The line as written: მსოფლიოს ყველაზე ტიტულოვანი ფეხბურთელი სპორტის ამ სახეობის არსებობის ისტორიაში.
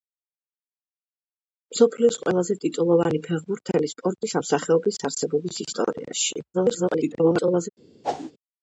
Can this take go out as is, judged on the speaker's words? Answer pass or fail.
fail